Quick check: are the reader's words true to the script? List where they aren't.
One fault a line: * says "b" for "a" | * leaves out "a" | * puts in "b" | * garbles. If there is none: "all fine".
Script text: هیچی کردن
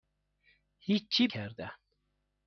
all fine